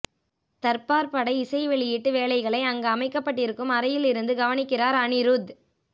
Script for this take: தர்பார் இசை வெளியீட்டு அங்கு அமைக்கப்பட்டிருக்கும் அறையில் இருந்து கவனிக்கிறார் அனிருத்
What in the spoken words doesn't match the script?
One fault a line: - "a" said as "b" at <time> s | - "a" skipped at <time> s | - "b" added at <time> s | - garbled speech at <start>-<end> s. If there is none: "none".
- "பட" added at 1.1 s
- "வேலைகளை" added at 2.1 s